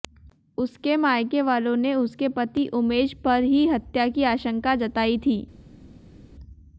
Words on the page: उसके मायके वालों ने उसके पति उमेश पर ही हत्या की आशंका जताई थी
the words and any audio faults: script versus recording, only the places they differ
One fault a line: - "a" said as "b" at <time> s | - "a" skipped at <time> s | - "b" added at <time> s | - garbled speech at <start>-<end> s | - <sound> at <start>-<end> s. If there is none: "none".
none